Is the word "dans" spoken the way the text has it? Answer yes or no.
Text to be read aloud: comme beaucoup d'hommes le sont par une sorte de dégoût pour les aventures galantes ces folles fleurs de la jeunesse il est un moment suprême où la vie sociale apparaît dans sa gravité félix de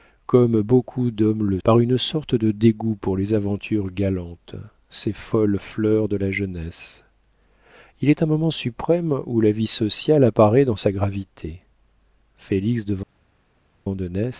yes